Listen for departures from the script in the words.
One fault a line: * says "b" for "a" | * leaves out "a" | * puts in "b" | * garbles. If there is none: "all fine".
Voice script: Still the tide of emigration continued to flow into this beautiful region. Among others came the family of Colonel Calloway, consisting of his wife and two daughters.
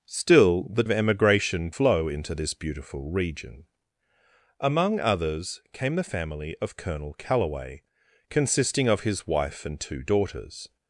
* leaves out "tide"
* leaves out "continued to"